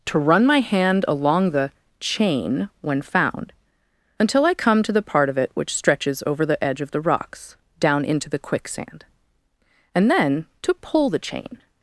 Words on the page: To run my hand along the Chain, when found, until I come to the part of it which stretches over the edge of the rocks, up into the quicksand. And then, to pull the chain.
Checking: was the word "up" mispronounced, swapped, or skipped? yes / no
yes